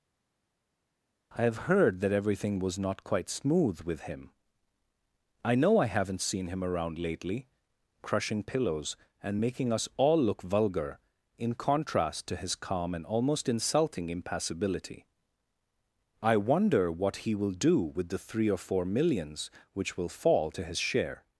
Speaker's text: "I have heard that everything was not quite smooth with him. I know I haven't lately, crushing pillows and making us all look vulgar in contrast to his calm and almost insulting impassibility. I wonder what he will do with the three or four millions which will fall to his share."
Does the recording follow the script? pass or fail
fail